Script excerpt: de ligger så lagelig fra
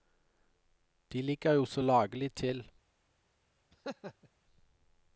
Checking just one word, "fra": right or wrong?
wrong